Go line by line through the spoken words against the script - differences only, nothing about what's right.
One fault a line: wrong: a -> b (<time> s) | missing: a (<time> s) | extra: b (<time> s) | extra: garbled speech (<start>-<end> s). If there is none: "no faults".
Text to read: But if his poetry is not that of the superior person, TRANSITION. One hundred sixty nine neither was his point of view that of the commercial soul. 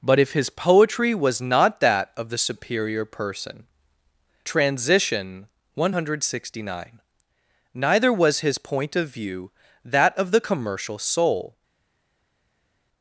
wrong: is -> was (1.1 s)